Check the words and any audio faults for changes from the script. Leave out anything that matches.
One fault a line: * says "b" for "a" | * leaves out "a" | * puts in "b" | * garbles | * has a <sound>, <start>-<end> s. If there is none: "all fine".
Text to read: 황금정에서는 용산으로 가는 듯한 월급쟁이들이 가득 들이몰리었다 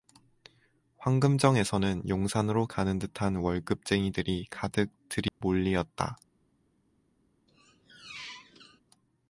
* has a dropout, 5.3-5.4 s
* has a squeak, 7.5-8.8 s